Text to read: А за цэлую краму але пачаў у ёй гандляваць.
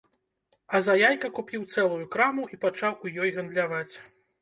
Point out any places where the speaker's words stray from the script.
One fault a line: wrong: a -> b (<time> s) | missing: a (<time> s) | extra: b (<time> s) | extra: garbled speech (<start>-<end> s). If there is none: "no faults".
extra: яйка купіў (1.0 s)
wrong: але -> і (2.5 s)